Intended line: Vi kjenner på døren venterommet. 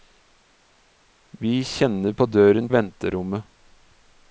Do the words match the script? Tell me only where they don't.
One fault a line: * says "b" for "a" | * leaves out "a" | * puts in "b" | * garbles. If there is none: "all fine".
all fine